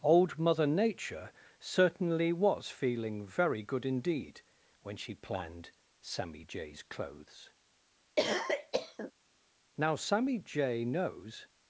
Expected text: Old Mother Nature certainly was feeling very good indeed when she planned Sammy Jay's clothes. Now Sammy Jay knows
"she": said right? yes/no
yes